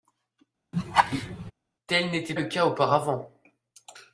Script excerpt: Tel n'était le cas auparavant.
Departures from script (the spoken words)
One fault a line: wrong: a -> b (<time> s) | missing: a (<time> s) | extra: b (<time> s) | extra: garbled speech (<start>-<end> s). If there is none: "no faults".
no faults